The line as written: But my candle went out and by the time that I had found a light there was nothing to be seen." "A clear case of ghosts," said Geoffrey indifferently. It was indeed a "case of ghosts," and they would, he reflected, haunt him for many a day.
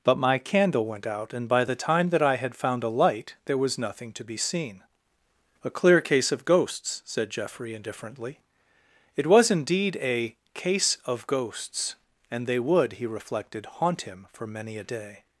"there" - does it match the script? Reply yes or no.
yes